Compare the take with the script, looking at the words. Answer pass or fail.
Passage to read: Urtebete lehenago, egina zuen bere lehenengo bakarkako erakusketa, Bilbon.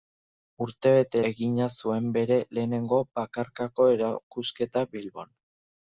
fail